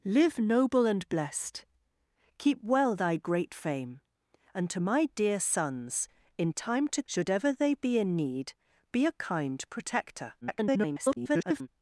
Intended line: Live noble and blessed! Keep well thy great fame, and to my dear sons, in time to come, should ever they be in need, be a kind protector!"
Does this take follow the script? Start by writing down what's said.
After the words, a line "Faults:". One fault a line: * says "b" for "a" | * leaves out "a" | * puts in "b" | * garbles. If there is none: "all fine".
Live noble and blessed! Keep well thy great fame, and to my dear sons, in time to should ever they be in need, be a kind protector!" [garbled]
Faults:
* leaves out "come"
* garbles